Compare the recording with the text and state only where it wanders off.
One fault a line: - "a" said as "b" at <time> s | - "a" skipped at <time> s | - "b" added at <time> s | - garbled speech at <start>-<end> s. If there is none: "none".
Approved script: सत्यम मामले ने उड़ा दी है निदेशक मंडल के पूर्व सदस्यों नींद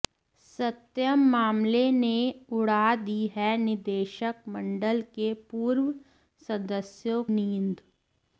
none